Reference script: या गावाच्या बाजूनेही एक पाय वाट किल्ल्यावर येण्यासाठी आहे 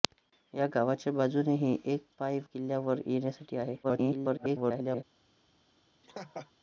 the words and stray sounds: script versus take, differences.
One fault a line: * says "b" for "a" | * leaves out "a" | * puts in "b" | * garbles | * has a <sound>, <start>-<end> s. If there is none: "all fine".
* leaves out "वाट"
* garbles
* has a laugh, 6.0-6.5 s